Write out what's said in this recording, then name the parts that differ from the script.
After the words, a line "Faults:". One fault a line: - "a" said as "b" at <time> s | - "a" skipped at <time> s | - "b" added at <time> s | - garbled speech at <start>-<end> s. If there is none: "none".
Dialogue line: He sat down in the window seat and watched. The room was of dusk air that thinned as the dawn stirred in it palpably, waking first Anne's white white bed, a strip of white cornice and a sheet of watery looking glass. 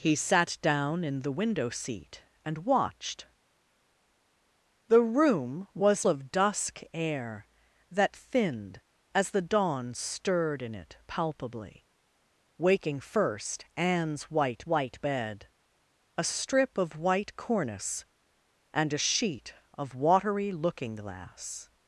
He sat down in the window seat and watched. The room was of dusk air that thinned as the dawn stirred in it palpably, waking first Anne's white white bed, a strip of white cornice and a sheet of watery looking glass.
Faults:
none